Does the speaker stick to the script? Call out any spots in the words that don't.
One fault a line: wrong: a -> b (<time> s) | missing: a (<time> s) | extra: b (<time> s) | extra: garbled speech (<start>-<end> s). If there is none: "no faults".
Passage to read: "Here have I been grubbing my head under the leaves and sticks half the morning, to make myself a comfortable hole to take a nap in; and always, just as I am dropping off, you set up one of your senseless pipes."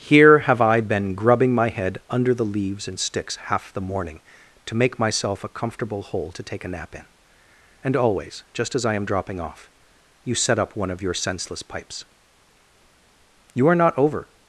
extra: You are not over (13.5 s)